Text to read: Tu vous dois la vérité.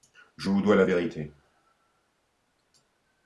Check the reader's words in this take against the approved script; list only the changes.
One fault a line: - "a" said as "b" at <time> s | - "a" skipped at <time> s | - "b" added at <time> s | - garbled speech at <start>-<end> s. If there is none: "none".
- "Tu" said as "Je" at 0.3 s